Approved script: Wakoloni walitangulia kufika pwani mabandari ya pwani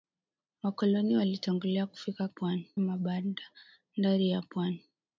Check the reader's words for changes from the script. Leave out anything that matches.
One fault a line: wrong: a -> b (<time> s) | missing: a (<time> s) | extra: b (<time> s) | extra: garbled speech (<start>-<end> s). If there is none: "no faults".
no faults